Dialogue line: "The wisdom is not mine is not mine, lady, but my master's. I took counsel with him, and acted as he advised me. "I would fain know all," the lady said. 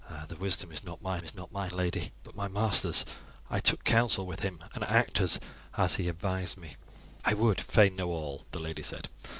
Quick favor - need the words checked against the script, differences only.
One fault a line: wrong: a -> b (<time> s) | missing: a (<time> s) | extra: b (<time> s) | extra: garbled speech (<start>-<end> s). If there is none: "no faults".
no faults